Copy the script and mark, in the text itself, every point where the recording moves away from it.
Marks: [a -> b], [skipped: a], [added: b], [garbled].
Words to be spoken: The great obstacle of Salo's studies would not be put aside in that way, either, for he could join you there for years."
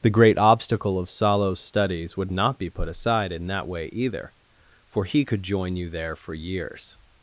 The great obstacle of Salo's studies would not be put aside in that way, either, for he could join you there for years."